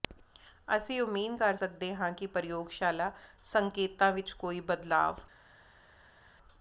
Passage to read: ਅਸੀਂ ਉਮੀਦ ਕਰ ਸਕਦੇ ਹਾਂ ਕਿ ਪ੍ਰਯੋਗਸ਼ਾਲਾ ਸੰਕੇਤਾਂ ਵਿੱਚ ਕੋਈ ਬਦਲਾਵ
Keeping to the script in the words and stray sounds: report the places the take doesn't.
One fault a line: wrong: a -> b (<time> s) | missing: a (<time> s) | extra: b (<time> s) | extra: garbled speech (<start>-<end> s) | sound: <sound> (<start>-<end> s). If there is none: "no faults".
no faults